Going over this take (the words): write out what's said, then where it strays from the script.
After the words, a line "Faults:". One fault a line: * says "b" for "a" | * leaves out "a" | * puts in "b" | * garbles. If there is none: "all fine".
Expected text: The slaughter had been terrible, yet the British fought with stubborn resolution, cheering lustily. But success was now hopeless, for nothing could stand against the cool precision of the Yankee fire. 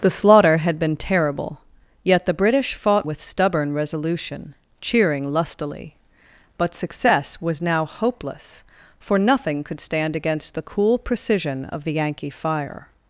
The slaughter had been terrible, yet the British fought with stubborn resolution, cheering lustily. But success was now hopeless, for nothing could stand against the cool precision of the Yankee fire.
Faults:
all fine